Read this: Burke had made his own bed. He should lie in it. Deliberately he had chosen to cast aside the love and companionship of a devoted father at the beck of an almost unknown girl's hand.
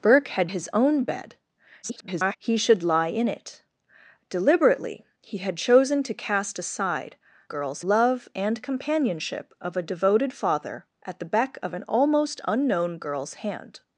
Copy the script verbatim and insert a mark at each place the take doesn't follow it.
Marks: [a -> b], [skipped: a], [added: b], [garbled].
Burke had [skipped: made] his own bed. [garbled] He should lie in it. Deliberately he had chosen to cast aside [the -> girl's] love and companionship of a devoted father at the beck of an almost unknown girl's hand.